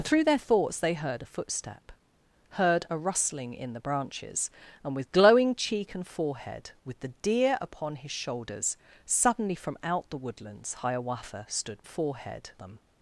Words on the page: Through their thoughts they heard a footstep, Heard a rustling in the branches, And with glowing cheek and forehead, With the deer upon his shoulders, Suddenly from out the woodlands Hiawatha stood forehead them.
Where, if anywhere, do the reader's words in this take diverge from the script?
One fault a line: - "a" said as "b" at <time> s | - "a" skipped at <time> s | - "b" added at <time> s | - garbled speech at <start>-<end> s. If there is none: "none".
none